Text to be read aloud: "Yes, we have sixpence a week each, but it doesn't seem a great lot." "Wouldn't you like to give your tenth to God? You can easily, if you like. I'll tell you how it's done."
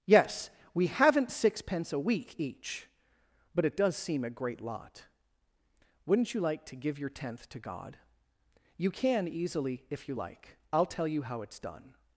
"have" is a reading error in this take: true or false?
true